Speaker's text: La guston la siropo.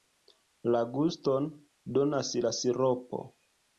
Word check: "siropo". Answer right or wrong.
right